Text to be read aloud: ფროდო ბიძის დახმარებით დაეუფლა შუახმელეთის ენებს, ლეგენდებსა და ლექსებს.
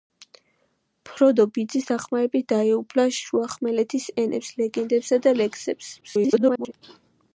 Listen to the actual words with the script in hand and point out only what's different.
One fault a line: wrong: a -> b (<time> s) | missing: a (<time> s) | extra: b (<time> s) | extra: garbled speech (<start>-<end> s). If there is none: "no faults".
extra: garbled speech (6.0-6.7 s)